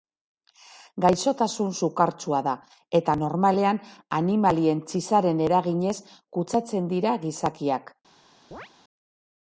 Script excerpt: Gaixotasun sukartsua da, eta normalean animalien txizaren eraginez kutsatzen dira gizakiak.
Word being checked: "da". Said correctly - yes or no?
yes